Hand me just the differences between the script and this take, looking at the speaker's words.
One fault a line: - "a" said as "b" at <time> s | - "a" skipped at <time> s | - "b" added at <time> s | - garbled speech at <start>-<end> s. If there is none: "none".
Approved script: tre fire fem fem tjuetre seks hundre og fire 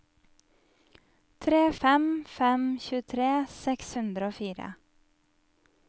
- "fire" skipped at 1.6 s